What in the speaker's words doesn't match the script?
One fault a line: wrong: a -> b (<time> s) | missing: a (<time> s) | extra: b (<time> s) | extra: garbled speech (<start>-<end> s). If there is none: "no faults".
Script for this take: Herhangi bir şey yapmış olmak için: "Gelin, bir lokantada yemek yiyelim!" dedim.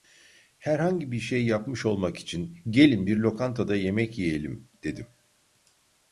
no faults